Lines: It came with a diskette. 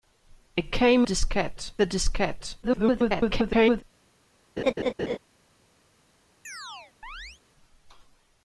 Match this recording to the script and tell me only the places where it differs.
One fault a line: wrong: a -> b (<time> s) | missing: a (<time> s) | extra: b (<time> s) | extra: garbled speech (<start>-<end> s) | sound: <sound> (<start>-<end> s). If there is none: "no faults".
wrong: with -> diskette (1.0 s)
extra: garbled speech (2.6-3.8 s)
sound: laugh (4.6-5.2 s)
sound: chirp (6.4-7.4 s)